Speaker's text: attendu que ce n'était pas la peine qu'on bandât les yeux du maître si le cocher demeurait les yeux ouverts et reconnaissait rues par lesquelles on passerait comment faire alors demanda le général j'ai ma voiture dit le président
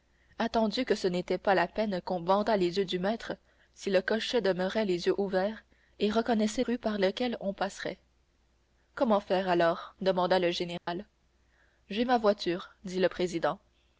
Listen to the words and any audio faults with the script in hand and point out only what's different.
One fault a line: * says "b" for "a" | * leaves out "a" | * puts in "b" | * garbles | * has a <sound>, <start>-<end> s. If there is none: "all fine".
* has a dropout, 10.8-10.9 s